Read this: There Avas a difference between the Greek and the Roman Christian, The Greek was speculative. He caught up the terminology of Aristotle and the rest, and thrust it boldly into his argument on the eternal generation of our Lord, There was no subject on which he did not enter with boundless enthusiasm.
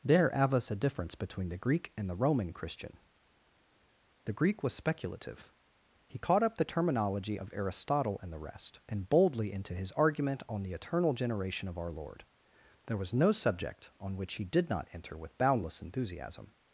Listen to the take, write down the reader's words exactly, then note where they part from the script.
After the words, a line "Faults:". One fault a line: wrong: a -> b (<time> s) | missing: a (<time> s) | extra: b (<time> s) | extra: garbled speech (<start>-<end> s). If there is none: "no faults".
There Avas a difference between the Greek and the Roman Christian, The Greek was speculative. He caught up the terminology of Aristotle and the rest, and boldly into his argument on the eternal generation of our Lord, There was no subject on which he did not enter with boundless enthusiasm.
Faults:
missing: thrust it (9.1 s)